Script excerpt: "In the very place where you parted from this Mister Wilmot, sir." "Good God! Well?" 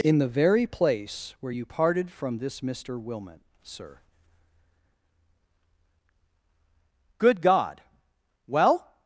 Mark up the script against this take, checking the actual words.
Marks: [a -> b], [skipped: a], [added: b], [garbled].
"In the very place where you parted from this Mister Wilmot, sir." "Good God! Well?"